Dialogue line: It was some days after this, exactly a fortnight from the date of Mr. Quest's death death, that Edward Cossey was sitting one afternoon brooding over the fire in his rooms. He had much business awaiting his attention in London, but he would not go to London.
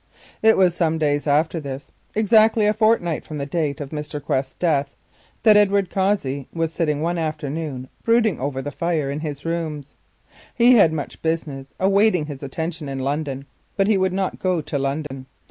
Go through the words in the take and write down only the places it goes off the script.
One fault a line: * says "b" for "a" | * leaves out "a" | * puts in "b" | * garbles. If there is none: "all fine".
* leaves out "death"